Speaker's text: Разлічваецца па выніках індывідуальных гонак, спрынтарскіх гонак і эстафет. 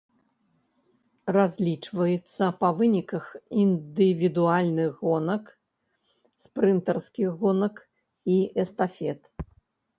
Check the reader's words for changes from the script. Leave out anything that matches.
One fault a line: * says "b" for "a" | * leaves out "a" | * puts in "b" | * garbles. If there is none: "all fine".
all fine